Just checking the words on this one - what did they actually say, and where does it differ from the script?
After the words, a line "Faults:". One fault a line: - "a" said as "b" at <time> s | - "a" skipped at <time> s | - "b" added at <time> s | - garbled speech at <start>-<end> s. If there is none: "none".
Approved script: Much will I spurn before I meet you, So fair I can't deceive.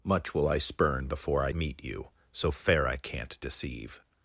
Much will I spurn before I meet you, So fair I can't deceive.
Faults:
none